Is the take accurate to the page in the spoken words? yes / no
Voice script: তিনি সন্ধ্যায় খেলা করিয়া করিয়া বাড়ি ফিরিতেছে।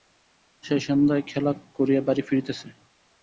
no